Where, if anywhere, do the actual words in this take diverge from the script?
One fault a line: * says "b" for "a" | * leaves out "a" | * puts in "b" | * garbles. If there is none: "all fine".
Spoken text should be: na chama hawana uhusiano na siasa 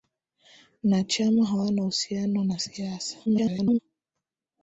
* garbles